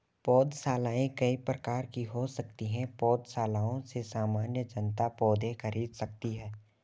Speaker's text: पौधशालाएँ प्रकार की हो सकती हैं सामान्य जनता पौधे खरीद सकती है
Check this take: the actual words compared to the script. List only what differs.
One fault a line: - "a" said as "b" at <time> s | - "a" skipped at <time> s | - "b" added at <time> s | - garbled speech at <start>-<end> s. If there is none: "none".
- "कई" added at 1.2 s
- "पौधशालाओं से" added at 3.0 s